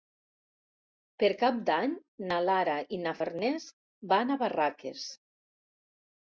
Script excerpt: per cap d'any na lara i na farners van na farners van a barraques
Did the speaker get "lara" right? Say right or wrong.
right